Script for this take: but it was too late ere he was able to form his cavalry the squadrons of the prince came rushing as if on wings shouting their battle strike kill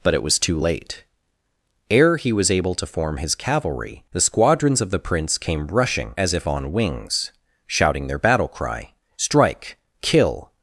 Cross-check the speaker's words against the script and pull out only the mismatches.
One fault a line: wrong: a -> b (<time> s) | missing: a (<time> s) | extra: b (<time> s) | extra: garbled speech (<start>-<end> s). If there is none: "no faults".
extra: cry (8.5 s)